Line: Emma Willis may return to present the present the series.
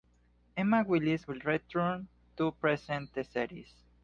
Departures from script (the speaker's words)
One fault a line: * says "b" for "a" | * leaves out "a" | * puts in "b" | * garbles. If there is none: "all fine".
* says "will" for "may"
* leaves out "present the"